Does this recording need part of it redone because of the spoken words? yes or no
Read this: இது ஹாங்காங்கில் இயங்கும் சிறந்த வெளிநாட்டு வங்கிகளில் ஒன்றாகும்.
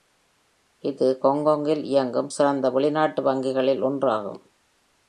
no